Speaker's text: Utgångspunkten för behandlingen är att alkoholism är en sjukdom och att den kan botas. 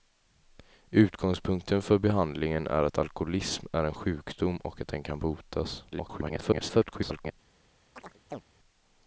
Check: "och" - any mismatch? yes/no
no